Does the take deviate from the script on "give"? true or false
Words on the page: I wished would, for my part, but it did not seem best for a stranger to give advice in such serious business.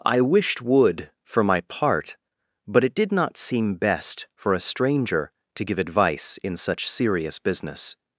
false